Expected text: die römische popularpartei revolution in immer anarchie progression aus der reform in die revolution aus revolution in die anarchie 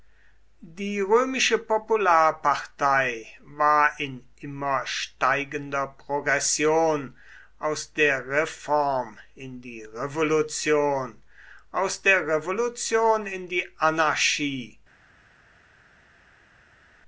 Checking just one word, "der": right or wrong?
right